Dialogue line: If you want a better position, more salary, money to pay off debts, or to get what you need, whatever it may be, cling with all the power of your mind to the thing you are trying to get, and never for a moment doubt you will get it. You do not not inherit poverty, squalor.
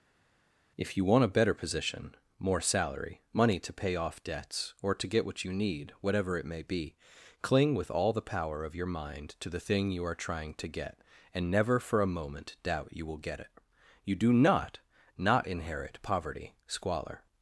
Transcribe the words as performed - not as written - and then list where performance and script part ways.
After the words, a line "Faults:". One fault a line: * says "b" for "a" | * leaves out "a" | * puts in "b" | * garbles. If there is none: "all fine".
If you want a better position, more salary, money to pay off debts, or to get what you need, whatever it may be, cling with all the power of your mind to the thing you are trying to get, and never for a moment doubt you will get it. You do not not inherit poverty, squalor.
Faults:
all fine